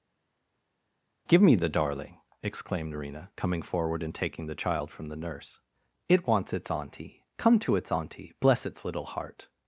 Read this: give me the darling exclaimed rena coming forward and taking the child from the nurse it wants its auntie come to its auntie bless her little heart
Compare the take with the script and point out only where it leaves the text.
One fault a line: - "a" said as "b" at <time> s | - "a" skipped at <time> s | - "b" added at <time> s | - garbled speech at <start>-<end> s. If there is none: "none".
- "her" said as "its" at 8.7 s